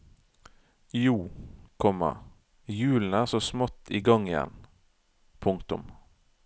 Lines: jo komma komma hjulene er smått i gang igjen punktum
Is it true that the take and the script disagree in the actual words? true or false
true